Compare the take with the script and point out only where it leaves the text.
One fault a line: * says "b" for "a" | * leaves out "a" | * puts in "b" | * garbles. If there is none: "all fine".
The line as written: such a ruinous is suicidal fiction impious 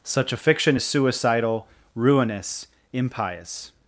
* says "fiction" for "ruinous"
* says "ruinous" for "fiction"